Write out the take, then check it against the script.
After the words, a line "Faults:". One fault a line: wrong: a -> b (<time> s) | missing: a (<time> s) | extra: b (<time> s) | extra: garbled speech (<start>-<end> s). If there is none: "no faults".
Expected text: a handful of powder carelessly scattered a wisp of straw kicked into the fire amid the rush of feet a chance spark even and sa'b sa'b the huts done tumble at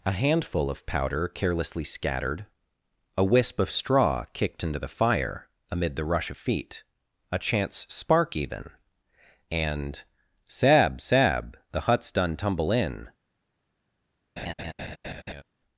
a handful of powder carelessly scattered a wisp of straw kicked into the fire amid the rush of feet a chance spark even and sa'b sa'b the huts done tumble in
Faults:
wrong: at -> in (12.7 s)